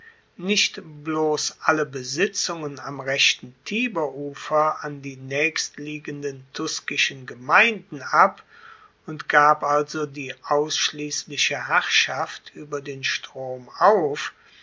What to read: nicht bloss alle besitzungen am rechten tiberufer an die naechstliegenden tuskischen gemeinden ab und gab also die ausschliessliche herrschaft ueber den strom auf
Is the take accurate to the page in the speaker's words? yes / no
yes